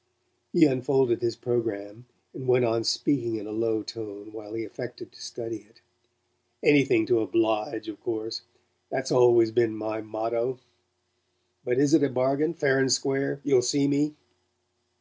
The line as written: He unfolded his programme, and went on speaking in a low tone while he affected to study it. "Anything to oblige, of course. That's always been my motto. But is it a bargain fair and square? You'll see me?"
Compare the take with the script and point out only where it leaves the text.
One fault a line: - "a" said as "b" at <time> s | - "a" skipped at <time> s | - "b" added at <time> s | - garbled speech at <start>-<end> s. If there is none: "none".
none